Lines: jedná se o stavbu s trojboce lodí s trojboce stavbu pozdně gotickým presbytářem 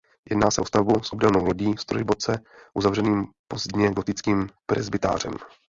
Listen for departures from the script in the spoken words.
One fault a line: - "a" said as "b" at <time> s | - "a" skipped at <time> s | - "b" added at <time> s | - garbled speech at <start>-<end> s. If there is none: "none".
- "trojboce" said as "obdélnou" at 1.1 s
- "stavbu" said as "uzavřeným" at 2.7 s